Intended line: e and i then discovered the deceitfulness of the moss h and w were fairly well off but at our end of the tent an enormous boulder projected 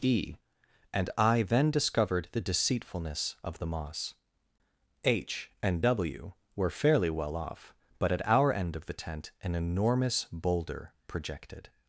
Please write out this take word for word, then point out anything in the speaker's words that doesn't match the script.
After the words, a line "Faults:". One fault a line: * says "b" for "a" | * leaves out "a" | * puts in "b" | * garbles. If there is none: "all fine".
e and i then discovered the deceitfulness of the moss h and w were fairly well off but at our end of the tent an enormous boulder projected
Faults:
all fine